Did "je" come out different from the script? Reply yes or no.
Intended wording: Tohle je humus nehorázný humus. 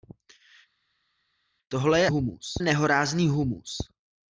no